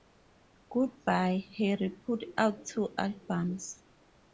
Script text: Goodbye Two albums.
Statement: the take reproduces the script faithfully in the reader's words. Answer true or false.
false